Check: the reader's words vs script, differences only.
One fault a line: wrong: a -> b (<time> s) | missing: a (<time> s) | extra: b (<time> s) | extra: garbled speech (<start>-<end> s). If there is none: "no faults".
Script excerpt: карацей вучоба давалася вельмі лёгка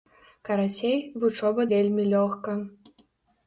missing: давалася (1.7 s)